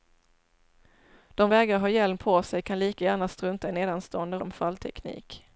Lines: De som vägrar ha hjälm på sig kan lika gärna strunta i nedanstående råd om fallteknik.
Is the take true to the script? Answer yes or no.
no